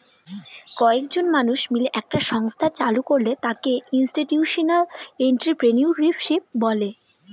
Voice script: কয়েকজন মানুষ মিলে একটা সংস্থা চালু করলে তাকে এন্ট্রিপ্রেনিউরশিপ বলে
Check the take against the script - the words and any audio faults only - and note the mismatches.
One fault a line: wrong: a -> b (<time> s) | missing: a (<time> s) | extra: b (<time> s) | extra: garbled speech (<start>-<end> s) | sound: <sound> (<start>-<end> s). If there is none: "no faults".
extra: ইনস্টিটিউশনাল (3.9 s)